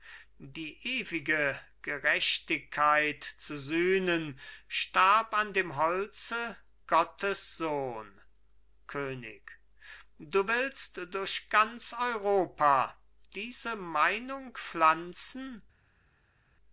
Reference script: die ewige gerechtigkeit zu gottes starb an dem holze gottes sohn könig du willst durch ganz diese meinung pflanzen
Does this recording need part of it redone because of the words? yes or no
yes